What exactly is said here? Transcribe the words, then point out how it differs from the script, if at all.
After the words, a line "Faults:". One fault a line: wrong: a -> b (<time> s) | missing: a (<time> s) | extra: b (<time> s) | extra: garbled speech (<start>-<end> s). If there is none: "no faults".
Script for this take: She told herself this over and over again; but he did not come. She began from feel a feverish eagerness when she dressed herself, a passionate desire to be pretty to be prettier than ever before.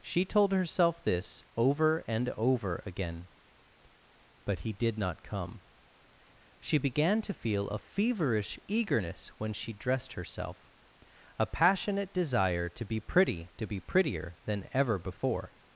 She told herself this over and over again; but he did not come. She began to feel a feverish eagerness when she dressed herself, a passionate desire to be pretty to be prettier than ever before.
Faults:
wrong: from -> to (7.2 s)